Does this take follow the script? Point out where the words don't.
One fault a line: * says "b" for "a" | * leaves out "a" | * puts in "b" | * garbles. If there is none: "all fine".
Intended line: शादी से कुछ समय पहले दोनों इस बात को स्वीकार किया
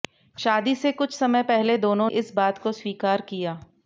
all fine